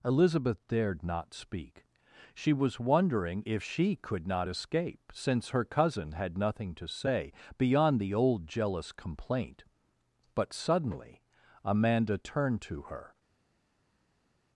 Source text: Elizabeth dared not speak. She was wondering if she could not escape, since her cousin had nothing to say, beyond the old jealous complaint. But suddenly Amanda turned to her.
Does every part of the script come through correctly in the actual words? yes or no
yes